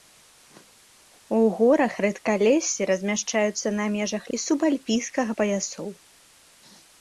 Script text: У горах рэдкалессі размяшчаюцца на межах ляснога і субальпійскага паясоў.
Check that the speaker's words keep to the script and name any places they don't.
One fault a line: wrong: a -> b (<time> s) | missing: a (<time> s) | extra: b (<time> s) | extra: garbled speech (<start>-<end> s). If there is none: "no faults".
missing: ляснога (4.2 s)